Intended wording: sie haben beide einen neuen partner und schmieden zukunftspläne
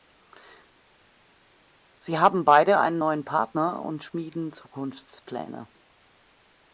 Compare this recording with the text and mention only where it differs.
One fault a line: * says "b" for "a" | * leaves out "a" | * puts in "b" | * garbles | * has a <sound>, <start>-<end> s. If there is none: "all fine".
all fine